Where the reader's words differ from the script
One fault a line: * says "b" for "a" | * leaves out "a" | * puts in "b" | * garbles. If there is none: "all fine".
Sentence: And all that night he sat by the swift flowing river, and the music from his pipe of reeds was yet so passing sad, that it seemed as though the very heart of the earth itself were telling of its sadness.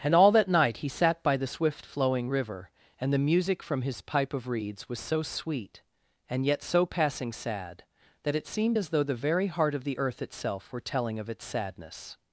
* puts in "so sweet and"